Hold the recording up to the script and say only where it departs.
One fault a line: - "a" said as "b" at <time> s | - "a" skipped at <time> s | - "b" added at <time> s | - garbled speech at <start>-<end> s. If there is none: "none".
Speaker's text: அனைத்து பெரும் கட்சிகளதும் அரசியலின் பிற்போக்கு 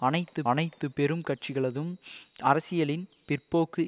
- "அனைத்து" added at 0.4 s